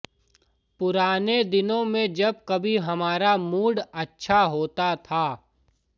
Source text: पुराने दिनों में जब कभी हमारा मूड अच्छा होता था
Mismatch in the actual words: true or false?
false